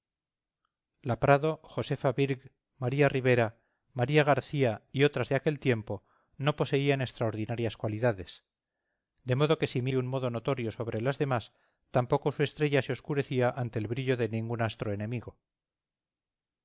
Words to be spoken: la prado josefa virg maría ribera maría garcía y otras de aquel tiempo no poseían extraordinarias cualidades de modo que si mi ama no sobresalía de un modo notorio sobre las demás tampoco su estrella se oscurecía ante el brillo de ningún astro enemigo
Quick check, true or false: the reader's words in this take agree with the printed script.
false